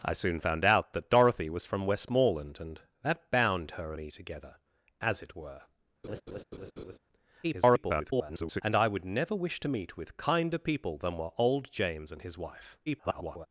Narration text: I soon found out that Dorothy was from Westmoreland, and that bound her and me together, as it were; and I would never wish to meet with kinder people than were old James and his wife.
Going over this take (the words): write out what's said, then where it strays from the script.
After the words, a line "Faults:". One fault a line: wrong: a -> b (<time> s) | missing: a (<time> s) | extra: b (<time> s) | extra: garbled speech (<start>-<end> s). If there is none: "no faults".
I soon found out that Dorothy was from Westmoreland, and that bound her me together, as it were; [garbled] and I would never wish to meet with kinder people than were old James and his wife. [garbled]
Faults:
missing: and (3.9 s)
extra: garbled speech (7.4-8.6 s)
extra: garbled speech (12.9-13.5 s)